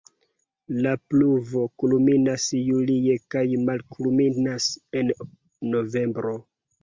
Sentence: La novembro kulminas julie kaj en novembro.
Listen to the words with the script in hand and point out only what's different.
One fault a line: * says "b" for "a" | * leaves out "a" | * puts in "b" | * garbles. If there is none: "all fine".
* says "pluvo" for "novembro"
* puts in "malkulminas"